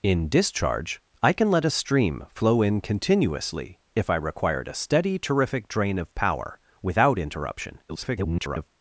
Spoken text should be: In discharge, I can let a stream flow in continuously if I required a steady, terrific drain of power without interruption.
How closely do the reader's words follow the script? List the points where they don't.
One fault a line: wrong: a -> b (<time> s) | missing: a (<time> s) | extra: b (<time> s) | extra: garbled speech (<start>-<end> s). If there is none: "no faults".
extra: garbled speech (7.9-8.7 s)